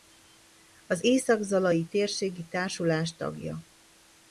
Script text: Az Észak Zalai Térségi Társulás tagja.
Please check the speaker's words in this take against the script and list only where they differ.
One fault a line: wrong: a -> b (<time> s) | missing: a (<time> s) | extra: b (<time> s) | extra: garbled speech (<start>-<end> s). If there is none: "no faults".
no faults